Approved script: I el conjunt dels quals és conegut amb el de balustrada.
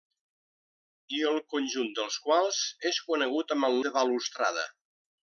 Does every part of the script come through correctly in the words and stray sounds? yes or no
yes